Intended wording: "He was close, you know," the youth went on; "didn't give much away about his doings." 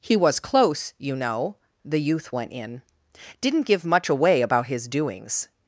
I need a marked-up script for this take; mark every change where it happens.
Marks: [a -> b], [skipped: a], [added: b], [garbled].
"He was close, you know," the youth went [on; -> in] "didn't give much away about his doings."